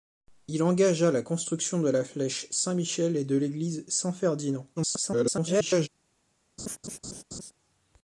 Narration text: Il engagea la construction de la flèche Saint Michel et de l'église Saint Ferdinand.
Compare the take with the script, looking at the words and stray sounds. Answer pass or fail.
fail